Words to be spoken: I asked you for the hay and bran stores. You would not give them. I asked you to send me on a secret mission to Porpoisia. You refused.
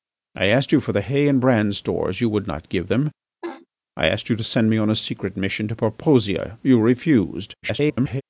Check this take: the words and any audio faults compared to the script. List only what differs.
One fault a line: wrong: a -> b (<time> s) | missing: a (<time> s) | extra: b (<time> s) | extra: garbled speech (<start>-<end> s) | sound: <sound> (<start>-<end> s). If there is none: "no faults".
sound: laugh (3.4-3.7 s)
extra: garbled speech (7.6-8.2 s)